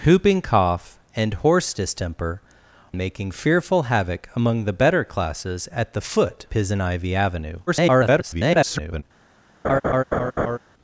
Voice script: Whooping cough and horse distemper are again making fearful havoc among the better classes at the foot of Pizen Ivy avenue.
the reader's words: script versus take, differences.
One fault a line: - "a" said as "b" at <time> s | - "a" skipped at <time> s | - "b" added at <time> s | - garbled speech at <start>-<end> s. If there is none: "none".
- "are again" skipped at 2.4 s
- "of" skipped at 6.5 s
- garbled speech at 7.7-9.0 s